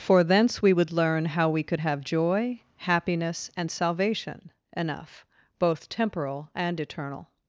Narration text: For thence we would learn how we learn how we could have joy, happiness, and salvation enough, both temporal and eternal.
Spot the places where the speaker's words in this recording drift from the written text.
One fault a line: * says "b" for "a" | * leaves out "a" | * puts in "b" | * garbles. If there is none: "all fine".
* leaves out "learn how we"